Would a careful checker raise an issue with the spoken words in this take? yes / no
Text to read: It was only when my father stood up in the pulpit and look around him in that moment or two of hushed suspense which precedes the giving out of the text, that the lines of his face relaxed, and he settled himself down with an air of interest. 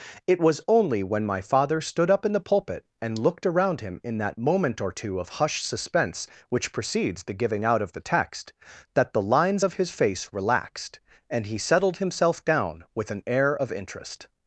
yes